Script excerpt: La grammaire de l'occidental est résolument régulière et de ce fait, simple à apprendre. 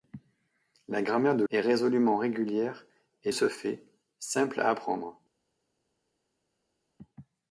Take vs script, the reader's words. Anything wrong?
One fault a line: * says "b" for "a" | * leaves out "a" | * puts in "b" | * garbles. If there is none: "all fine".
* leaves out "l'occidental"
* leaves out "de"